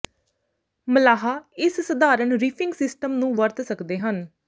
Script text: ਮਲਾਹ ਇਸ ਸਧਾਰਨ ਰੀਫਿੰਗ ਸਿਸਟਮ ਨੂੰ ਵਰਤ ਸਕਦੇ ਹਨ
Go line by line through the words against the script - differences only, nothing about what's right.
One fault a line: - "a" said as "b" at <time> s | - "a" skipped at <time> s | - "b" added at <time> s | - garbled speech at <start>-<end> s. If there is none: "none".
none